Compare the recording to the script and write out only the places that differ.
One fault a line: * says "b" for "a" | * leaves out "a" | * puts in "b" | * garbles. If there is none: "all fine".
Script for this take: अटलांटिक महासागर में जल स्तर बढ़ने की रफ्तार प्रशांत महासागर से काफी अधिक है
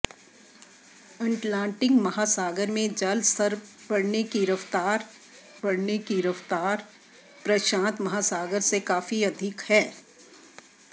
* puts in "बढ़ने की रफ्तार"